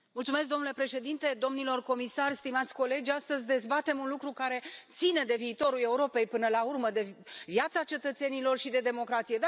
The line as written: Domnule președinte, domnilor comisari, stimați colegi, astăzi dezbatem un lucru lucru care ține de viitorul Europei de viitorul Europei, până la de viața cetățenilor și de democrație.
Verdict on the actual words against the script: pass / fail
fail